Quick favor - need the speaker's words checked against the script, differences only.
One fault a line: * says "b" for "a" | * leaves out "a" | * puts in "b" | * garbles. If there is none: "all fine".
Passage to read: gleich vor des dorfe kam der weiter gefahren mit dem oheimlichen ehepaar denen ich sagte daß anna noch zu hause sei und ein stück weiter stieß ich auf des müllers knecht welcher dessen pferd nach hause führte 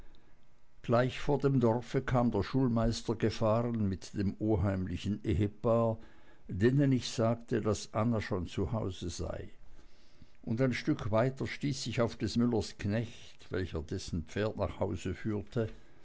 * says "dem" for "des"
* says "schulmeister" for "weiter"
* says "schon" for "noch"